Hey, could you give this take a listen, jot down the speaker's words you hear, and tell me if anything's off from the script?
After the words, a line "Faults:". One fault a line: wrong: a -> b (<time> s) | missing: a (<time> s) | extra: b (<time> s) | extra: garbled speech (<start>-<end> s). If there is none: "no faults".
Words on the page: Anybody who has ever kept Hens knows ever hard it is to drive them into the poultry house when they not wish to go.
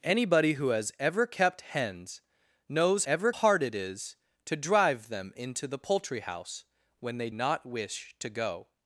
Anybody who has ever kept Hens knows ever hard it is to drive them into the poultry house when they not wish to go.
Faults:
no faults